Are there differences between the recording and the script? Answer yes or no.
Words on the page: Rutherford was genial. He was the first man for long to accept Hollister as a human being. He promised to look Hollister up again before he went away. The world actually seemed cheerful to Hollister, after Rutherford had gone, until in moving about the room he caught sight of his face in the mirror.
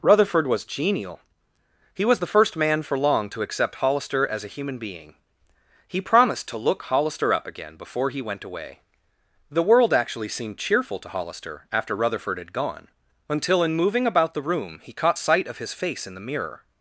no